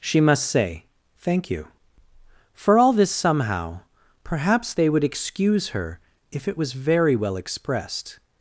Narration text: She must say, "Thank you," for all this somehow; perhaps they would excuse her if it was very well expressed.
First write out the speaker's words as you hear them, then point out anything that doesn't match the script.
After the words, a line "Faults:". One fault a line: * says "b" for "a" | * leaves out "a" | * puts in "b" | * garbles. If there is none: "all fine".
She must say, "Thank you," for all this somehow; perhaps they would excuse her if it was very well expressed.
Faults:
all fine